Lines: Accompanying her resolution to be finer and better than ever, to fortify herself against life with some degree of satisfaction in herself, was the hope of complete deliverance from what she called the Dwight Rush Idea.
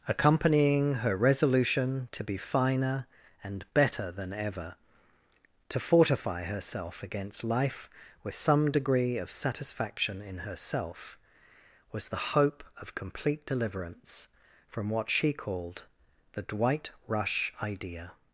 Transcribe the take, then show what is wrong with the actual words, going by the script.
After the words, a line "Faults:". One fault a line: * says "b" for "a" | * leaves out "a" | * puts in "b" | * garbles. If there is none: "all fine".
Accompanying her resolution to be finer and better than ever, to fortify herself against life with some degree of satisfaction in herself, was the hope of complete deliverance from what she called the Dwight Rush Idea.
Faults:
all fine